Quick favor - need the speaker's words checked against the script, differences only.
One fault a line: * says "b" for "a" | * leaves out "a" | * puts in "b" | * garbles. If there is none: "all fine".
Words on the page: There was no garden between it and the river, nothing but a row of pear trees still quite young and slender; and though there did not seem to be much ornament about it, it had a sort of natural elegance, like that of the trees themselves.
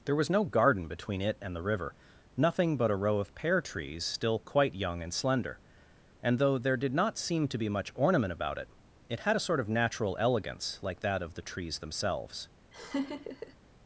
all fine